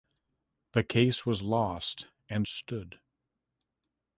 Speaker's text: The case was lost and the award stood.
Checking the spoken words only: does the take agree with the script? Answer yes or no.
no